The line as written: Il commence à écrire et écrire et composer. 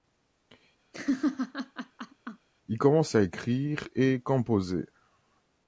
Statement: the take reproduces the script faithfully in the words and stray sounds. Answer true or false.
false